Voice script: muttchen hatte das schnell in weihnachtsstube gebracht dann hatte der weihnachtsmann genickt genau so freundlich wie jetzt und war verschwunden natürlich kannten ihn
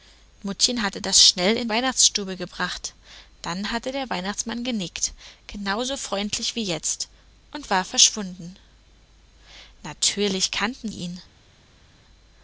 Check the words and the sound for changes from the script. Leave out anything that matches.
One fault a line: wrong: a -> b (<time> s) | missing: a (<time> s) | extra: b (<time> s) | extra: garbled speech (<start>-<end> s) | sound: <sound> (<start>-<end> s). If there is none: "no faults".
no faults